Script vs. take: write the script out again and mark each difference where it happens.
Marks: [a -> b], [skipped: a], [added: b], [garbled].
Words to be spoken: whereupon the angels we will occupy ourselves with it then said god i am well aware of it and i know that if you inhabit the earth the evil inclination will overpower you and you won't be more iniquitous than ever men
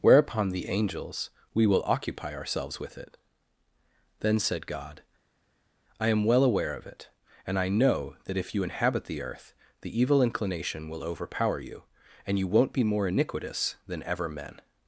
whereupon the angels we will occupy ourselves with it then said god i am well aware of it and i know that if you inhabit the earth the evil inclination will overpower you and you won't be more iniquitous than ever men